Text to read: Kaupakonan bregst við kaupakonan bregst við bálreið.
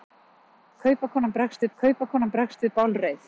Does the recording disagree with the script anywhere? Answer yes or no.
no